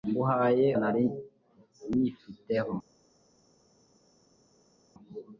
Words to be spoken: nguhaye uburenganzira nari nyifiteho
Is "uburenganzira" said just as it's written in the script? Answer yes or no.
no